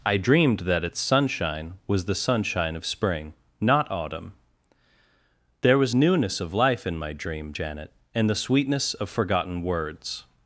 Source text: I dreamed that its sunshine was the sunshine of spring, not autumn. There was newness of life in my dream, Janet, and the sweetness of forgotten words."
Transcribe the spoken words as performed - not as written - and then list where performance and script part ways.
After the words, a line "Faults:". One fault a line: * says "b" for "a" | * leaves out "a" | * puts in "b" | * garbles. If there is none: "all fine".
I dreamed that its sunshine was the sunshine of spring, not autumn. There was newness of life in my dream, Janet, and the sweetness of forgotten words."
Faults:
all fine